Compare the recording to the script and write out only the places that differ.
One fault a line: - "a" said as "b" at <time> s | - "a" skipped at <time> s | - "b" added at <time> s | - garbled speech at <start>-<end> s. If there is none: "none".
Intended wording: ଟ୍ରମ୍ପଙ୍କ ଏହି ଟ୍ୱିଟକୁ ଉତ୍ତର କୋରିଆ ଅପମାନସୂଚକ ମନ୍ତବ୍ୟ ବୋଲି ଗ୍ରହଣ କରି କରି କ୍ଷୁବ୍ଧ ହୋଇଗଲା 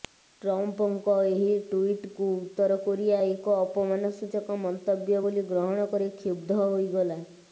- "ଏକ" added at 3.3 s
- "କରି" skipped at 6.1 s